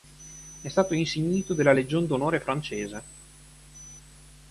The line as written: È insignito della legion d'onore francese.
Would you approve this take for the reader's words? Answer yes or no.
no